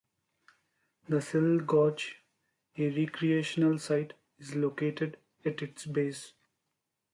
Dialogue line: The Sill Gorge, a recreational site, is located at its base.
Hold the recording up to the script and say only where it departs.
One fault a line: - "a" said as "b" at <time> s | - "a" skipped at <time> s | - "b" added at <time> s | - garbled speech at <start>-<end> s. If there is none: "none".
none